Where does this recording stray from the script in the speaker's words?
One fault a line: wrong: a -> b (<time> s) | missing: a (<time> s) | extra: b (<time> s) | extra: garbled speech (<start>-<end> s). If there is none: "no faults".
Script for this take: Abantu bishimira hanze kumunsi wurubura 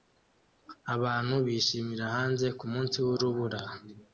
no faults